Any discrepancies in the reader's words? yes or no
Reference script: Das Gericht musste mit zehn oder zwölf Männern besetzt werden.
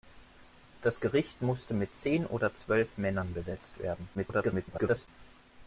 yes